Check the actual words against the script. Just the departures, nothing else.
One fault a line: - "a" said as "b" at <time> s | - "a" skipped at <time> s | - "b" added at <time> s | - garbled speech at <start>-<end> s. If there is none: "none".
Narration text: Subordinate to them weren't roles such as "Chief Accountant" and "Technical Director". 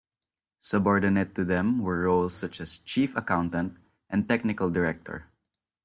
- "weren't" said as "were" at 1.8 s